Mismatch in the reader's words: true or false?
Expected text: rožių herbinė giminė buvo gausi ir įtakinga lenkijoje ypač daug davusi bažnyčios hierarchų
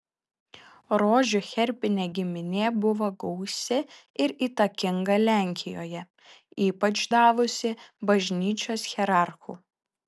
true